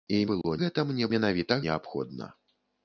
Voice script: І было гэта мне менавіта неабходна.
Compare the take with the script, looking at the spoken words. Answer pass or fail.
pass